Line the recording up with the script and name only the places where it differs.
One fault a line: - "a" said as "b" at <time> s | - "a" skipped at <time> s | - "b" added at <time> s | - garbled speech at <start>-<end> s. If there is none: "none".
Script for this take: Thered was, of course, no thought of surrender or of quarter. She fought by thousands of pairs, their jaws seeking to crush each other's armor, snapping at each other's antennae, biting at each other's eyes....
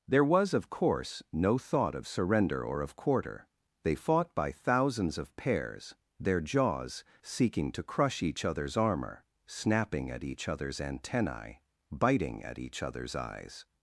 - "Thered" said as "There" at 0.1 s
- "She" said as "They" at 3.8 s